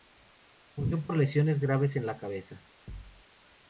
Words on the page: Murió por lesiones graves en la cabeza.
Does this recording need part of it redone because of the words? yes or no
no